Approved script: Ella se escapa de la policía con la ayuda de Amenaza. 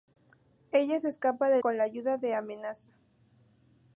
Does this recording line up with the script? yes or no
no